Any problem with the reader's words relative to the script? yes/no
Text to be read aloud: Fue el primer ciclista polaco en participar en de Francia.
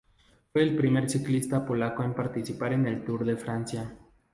yes